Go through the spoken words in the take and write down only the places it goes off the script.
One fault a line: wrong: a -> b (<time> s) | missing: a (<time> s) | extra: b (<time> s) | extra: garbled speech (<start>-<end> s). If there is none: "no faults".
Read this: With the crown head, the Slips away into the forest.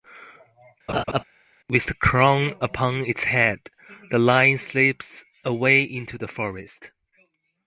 extra: upon its (2.6 s)
extra: Lion (4.2 s)